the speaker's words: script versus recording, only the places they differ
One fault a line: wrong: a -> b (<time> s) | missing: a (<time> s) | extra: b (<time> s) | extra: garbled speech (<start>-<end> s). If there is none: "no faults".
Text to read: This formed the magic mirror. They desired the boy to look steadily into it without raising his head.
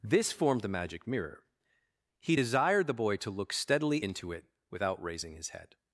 wrong: They -> He (2.2 s)